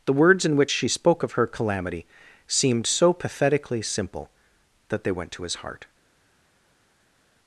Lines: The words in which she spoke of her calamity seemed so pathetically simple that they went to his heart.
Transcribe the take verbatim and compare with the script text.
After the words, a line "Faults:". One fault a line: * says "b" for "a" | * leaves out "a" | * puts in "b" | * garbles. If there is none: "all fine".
The words in which she spoke of her calamity seemed so pathetically simple that they went to his heart.
Faults:
all fine